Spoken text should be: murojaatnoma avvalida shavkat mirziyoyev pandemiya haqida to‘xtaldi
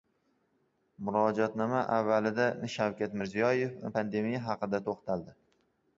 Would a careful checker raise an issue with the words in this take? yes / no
no